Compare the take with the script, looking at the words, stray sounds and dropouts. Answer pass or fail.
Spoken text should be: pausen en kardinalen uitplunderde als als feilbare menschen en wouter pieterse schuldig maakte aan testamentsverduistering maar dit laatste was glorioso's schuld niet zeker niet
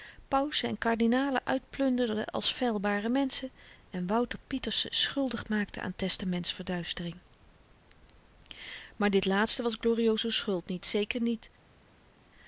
fail